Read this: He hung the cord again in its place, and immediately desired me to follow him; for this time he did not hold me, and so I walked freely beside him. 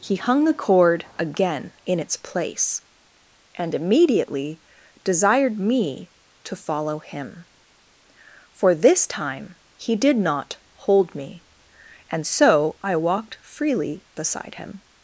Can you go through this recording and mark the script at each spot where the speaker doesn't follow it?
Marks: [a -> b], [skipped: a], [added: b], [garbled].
He hung the cord again in its place, and immediately desired me to follow him; for this time he did not hold me, and so I walked freely beside him.